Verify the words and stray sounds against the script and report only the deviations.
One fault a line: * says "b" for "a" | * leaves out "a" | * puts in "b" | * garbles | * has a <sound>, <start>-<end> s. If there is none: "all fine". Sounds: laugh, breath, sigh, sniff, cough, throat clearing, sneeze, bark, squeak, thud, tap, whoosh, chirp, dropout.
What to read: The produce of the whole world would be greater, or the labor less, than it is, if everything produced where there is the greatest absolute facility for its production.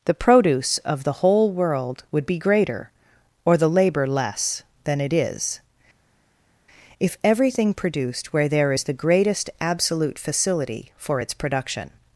all fine